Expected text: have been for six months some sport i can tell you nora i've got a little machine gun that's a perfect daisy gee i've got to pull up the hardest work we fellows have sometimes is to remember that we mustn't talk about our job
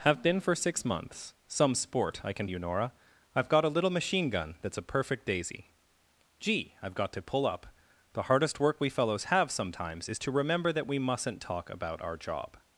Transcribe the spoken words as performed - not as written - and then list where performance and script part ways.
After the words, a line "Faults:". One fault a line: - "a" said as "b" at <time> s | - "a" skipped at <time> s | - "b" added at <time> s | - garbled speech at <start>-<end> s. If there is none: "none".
have been for six months some sport i can you nora i've got a little machine gun that's a perfect daisy gee i've got to pull up the hardest work we fellows have sometimes is to remember that we mustn't talk about our job
Faults:
- "tell" skipped at 2.5 s